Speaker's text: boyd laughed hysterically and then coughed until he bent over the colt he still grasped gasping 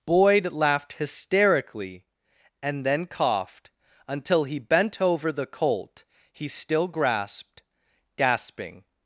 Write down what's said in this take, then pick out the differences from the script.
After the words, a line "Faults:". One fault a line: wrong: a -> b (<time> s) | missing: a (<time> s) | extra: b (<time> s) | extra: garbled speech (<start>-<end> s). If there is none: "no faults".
boyd laughed hysterically and then coughed until he bent over the colt he still grasped gasping
Faults:
no faults